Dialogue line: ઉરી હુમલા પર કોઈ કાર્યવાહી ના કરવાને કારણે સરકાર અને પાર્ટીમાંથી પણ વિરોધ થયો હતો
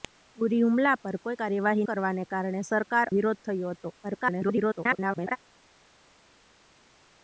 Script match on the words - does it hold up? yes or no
no